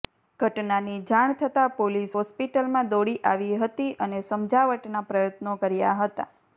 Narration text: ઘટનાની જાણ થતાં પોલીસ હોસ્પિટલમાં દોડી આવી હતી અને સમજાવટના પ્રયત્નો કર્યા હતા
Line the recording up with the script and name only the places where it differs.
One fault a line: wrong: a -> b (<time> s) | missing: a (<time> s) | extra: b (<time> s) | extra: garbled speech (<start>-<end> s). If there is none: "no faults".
no faults